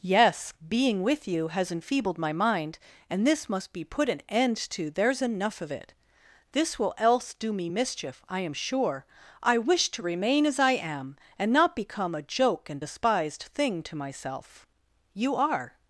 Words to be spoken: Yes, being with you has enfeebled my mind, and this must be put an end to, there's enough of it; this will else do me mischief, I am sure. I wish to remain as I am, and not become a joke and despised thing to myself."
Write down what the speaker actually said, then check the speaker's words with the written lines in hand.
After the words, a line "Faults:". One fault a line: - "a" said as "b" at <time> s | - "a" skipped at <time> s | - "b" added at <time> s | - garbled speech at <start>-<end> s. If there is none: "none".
Yes, being with you has enfeebled my mind, and this must be put an end to, there's enough of it; this will else do me mischief, I am sure. I wish to remain as I am, and not become a joke and despised thing to myself." "You are
Faults:
- "You are" added at 15.1 s